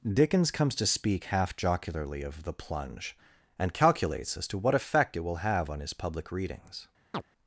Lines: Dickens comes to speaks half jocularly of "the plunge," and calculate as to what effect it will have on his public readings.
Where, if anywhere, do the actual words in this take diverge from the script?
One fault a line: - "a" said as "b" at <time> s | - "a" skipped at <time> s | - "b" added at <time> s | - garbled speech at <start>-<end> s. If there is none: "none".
- "speaks" said as "speak" at 0.8 s
- "calculate" said as "calculates" at 3.7 s